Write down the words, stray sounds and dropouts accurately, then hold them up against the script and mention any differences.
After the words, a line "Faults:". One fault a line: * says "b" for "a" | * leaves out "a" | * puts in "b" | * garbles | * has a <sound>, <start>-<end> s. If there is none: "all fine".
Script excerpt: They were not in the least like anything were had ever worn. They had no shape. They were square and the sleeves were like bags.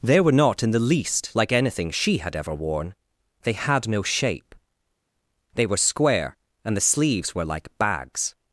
They were not in the least like anything she had ever worn. They had no shape. They were square and the sleeves were like bags.
Faults:
* says "she" for "were"